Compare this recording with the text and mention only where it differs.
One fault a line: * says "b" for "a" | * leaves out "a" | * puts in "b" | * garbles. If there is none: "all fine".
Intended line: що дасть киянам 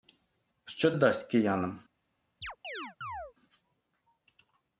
all fine